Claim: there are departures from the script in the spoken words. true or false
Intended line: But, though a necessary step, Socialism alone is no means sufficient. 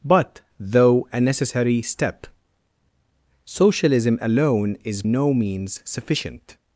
false